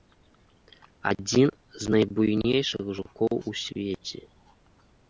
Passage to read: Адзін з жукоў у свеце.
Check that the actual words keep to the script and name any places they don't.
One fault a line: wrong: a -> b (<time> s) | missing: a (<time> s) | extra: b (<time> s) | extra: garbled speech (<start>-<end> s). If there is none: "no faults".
extra: найбуйнейшых (1.9 s)